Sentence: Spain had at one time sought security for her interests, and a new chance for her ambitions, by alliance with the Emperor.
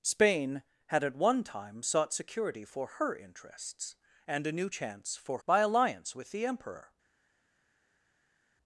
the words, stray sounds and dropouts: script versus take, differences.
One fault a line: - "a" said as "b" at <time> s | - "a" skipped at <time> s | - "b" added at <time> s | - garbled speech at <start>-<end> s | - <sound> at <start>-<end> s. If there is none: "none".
- "her ambitions" skipped at 5.4 s